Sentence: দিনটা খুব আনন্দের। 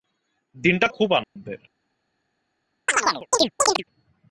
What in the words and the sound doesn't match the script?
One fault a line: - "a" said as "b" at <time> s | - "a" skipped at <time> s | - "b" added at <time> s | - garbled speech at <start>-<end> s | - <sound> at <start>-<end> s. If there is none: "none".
- dropout at 1.2-1.4 s
- chirp at 2.9-3.8 s